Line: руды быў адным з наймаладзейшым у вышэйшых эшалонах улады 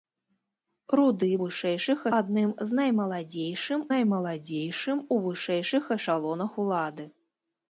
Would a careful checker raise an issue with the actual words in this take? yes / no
yes